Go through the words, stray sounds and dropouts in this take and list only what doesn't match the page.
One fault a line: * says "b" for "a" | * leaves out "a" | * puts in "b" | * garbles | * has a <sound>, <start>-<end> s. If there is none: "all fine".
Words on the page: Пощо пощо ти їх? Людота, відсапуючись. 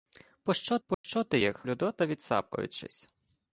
* has a dropout, 0.9-1.0 s